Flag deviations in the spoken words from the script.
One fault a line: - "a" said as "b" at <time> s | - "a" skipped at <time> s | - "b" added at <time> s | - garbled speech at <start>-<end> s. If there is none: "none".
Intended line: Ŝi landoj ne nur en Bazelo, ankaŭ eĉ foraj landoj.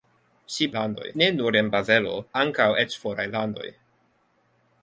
none